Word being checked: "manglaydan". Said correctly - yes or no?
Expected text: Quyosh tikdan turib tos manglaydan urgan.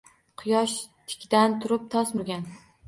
no